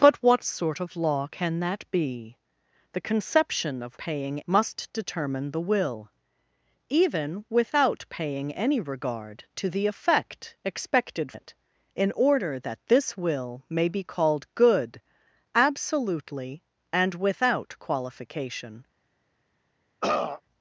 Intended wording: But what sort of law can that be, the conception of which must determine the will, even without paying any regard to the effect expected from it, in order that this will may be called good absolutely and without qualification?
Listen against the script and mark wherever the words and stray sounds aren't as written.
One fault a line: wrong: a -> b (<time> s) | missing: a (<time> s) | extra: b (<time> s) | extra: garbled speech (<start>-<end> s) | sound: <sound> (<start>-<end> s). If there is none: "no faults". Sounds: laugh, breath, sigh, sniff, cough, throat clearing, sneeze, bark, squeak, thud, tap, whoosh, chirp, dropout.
wrong: which -> paying (4.0 s)
missing: from (11.3 s)
sound: throat clearing (20.0-20.4 s)